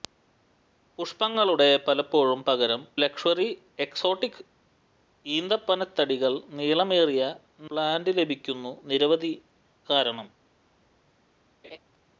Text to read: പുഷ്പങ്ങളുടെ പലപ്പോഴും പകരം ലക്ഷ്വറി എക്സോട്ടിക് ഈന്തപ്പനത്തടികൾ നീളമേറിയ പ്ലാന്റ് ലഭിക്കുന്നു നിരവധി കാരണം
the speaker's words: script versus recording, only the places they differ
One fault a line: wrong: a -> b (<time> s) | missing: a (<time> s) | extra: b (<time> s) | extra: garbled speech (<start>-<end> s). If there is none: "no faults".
no faults